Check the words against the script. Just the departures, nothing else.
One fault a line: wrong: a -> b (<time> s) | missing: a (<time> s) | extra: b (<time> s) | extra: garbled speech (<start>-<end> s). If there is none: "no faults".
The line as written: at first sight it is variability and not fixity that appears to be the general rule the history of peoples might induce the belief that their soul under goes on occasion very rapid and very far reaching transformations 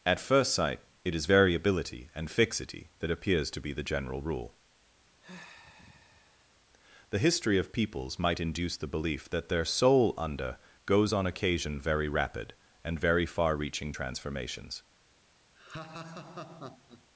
missing: not (2.3 s)